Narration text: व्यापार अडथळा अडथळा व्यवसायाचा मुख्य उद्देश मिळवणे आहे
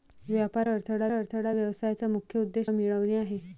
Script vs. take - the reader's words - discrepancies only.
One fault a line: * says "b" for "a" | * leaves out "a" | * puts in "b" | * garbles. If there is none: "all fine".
all fine